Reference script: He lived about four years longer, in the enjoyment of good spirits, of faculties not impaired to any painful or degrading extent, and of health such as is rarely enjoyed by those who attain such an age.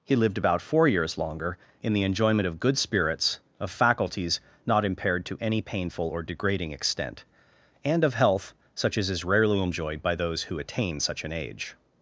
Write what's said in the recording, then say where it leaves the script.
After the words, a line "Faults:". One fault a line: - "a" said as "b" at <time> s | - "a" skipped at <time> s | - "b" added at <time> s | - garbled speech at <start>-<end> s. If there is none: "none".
He lived about four years longer, in the enjoyment of good spirits, of faculties not impaired to any painful or degrading extent, and of health such as is rarely enjoyed by those who attain such an age.
Faults:
none